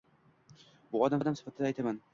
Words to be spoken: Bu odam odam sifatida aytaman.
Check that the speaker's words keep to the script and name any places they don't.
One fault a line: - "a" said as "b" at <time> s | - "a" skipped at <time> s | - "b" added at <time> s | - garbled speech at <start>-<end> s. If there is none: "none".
none